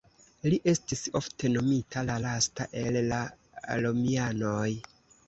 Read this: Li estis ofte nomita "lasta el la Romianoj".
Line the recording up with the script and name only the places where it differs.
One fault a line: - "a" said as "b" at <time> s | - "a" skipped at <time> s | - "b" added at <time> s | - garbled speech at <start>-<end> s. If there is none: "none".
- "la" added at 2.1 s